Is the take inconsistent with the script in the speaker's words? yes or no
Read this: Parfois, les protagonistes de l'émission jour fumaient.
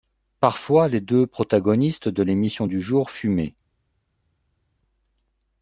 yes